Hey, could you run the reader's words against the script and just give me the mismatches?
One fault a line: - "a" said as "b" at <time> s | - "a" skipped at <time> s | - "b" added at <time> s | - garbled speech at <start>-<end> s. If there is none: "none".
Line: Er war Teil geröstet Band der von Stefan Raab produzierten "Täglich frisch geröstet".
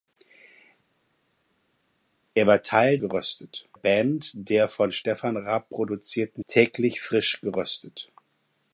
none